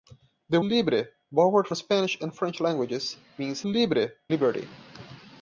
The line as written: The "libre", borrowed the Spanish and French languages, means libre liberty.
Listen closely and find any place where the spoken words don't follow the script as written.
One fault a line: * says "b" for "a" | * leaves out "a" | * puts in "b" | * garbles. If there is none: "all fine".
all fine